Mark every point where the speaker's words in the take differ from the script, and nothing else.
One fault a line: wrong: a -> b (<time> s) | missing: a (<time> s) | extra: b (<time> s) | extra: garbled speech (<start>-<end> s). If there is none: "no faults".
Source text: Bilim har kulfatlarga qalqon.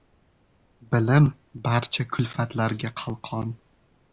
wrong: har -> barcha (1.7 s)